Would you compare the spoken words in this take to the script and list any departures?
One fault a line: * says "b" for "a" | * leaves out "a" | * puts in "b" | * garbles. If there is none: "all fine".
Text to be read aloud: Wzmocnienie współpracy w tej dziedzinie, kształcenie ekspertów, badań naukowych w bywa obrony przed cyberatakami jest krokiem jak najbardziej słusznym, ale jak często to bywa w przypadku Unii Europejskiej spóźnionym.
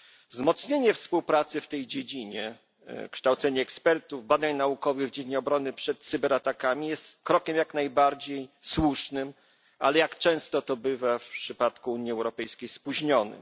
* says "dziedzinie" for "bywa"